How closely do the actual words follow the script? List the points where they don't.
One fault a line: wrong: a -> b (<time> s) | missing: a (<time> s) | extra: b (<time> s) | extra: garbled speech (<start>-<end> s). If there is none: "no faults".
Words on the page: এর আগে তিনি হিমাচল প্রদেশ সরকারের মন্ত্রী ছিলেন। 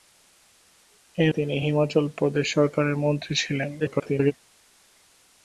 missing: আগে (1.3 s)
extra: garbled speech (3.8-4.3 s)